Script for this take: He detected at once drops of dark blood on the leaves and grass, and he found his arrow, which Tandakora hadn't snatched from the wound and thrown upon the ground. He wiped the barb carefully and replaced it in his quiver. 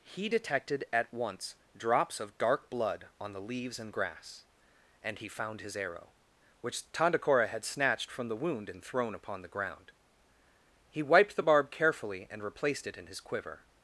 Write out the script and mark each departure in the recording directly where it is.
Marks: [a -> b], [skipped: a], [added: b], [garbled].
He detected at once drops of dark blood on the leaves and grass, and he found his arrow, which Tandakora [hadn't -> had] snatched from the wound and thrown upon the ground. He wiped the barb carefully and replaced it in his quiver.